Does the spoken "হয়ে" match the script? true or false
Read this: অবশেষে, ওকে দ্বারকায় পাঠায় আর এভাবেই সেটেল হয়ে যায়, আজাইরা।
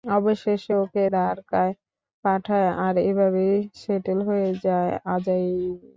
true